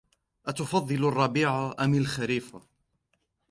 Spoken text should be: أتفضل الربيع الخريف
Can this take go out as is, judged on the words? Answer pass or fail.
fail